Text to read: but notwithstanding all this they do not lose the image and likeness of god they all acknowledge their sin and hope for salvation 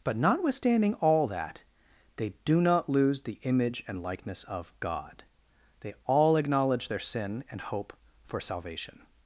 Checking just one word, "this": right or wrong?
wrong